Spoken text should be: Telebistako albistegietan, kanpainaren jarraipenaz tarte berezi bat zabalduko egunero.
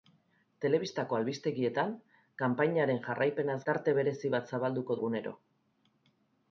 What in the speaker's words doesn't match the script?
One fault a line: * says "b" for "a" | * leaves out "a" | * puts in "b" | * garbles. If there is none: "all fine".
all fine